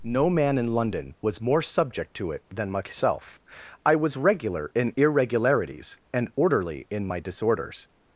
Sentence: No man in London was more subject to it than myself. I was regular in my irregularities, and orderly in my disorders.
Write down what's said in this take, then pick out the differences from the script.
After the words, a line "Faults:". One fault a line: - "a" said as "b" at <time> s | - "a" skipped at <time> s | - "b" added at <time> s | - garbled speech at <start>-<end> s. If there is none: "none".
No man in London was more subject to it than myself. I was regular in irregularities, and orderly in my disorders.
Faults:
- "my" skipped at 4.9 s